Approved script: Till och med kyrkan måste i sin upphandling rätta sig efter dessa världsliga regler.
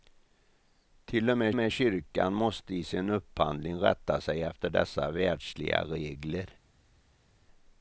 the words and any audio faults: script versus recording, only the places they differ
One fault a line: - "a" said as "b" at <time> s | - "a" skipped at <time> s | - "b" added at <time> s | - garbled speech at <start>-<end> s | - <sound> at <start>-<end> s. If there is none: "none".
- "med" added at 1.5 s